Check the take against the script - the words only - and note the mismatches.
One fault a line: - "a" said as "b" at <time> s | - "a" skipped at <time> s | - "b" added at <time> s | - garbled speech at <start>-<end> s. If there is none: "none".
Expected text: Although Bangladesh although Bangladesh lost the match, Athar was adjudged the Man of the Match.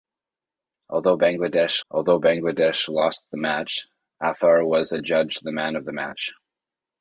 none